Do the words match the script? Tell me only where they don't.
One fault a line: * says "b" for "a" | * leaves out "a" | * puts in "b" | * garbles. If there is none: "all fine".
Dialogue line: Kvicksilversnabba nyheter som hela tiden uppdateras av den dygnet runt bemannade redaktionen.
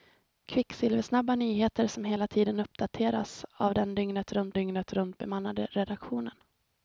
* puts in "dygnet runt"